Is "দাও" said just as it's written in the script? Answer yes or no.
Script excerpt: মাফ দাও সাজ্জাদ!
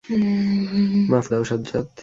yes